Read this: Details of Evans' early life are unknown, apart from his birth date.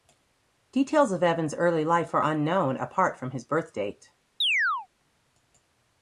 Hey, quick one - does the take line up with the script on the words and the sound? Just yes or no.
no